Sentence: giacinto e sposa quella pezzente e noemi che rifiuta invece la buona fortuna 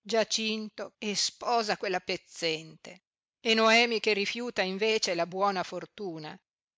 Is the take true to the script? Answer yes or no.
yes